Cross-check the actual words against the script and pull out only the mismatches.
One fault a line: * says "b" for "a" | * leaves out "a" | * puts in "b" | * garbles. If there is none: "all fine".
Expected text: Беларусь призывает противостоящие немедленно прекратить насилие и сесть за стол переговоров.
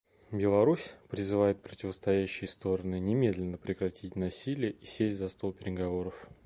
* puts in "стороны"